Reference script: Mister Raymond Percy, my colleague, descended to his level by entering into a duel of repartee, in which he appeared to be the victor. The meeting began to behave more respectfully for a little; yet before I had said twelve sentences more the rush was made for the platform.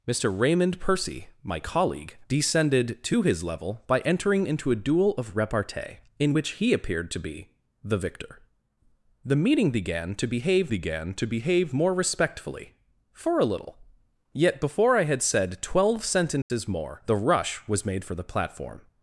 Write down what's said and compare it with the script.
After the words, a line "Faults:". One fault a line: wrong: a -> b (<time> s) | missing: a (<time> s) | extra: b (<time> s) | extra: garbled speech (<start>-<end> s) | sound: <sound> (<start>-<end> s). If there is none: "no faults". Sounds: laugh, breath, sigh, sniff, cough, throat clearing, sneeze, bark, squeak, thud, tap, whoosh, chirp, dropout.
Mister Raymond Percy, my colleague, descended to his level by entering into a duel of repartee, in which he appeared to be the victor. The meeting began to behave began to behave more respectfully for a little; yet before I had said twelve sentences more the rush was made for the platform.
Faults:
extra: began to behave (10.7 s)
sound: dropout (16.4-16.5 s)